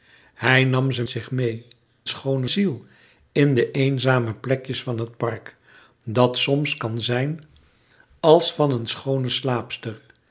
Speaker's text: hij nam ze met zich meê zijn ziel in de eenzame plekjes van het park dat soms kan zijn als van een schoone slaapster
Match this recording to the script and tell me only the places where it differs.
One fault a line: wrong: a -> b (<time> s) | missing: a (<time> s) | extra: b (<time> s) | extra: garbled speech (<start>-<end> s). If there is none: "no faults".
missing: met (1.0 s)
wrong: zijn -> schoone (2.1 s)